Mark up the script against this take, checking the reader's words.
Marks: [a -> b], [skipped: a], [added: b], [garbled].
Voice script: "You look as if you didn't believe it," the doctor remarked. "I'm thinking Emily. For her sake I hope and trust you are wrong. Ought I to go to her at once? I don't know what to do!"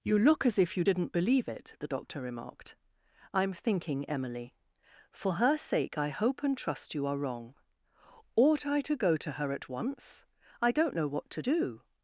"You look as if you didn't believe it," the doctor remarked. "I'm thinking Emily. For her sake I hope and trust you are wrong. Ought I to go to her at once? I don't know what to do!"